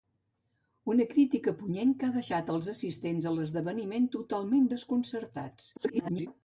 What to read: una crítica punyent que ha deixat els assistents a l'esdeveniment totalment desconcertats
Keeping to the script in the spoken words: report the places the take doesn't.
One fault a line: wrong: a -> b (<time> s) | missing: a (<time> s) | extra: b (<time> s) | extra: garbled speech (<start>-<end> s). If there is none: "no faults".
extra: garbled speech (5.8-6.3 s)